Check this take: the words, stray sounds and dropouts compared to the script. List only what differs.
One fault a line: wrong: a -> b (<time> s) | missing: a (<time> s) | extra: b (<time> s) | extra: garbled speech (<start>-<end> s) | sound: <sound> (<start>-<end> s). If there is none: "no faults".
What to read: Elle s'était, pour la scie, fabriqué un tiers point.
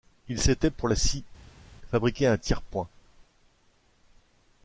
wrong: Elle -> Il (0.3 s)